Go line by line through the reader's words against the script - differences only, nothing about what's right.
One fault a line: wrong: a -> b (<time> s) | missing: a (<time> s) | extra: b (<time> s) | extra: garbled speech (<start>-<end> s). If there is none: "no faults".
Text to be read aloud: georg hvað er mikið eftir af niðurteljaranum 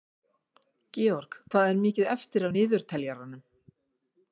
no faults